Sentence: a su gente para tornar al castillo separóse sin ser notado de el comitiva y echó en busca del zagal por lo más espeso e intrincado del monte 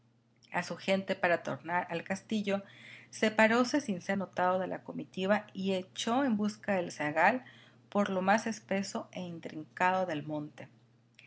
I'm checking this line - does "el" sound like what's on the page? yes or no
no